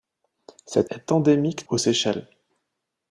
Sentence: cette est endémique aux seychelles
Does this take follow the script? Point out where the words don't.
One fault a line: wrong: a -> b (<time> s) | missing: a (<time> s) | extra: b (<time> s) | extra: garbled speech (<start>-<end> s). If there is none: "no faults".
no faults